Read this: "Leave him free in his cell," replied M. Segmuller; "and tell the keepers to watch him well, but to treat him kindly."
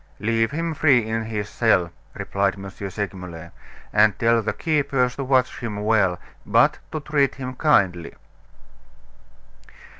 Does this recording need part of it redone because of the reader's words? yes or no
no